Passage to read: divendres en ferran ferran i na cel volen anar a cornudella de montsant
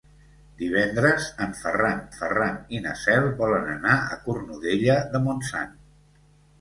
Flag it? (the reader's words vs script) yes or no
no